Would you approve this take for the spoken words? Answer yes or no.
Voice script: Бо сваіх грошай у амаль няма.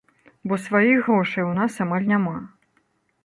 no